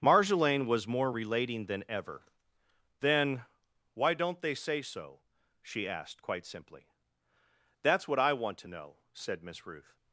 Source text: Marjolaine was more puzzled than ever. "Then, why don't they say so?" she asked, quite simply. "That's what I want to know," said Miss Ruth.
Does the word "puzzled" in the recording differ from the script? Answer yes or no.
yes